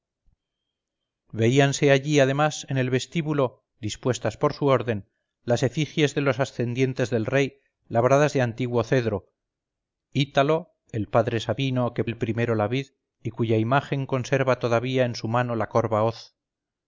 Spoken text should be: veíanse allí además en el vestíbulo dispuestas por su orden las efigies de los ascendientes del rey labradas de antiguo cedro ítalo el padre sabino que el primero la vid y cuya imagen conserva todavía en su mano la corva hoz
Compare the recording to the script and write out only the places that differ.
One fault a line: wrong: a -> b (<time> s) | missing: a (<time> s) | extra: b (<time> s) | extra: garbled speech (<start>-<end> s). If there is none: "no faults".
no faults